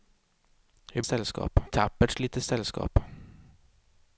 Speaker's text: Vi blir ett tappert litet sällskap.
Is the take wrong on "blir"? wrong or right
wrong